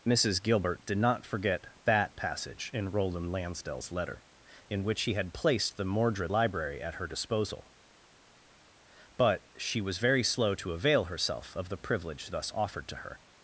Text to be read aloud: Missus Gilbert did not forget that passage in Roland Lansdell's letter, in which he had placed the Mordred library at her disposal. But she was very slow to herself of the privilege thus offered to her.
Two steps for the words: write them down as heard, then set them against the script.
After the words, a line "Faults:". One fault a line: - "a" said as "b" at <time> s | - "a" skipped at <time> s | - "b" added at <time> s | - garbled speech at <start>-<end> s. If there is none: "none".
Missus Gilbert did not forget that passage in Roland Lansdell's letter, in which he had placed the Mordred library at her disposal. But she was very slow to avail herself of the privilege thus offered to her.
Faults:
- "avail" added at 10.7 s